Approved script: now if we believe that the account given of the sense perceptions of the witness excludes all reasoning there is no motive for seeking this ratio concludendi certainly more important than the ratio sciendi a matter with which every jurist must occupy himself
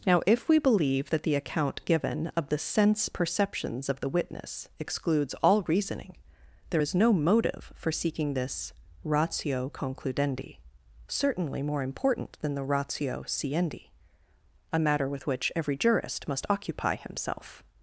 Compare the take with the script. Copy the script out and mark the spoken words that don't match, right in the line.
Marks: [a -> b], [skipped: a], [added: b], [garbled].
now if we believe that the account given of the sense perceptions of the witness excludes all reasoning there is no motive for seeking this ratio concludendi certainly more important than the ratio sciendi a matter with which every jurist must occupy himself